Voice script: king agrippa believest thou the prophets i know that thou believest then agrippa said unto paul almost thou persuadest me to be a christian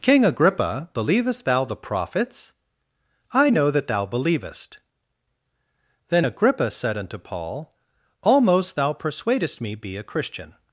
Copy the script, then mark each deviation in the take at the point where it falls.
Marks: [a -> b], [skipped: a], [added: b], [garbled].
king agrippa believest thou the prophets i know that thou believest then agrippa said unto paul almost thou persuadest me [skipped: to] be a christian